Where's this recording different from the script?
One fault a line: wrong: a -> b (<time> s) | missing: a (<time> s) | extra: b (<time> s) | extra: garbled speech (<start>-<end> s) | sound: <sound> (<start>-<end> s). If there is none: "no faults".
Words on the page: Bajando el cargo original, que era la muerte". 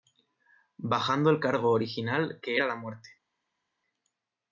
no faults